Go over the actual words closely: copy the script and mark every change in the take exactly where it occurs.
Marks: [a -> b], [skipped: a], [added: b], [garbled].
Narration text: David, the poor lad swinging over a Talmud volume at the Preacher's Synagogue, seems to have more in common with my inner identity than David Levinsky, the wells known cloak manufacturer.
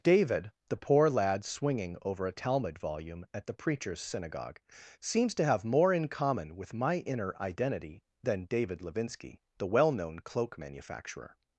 David, the poor lad swinging over a Talmud volume at the Preacher's Synagogue, seems to have more in common with my inner identity than David Levinsky, the [wells -> well] known cloak manufacturer.